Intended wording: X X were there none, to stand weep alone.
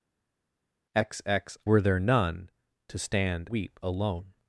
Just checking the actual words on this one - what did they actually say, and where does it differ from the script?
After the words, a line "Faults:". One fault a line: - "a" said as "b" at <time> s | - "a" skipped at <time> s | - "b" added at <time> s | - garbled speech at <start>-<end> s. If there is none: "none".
X X were there none, to stand weep alone.
Faults:
none